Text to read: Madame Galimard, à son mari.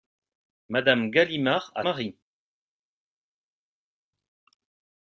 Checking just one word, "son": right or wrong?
wrong